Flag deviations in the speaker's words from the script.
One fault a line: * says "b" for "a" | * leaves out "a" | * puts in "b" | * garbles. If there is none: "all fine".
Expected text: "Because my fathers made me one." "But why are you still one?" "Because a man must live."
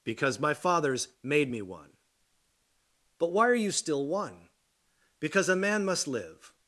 all fine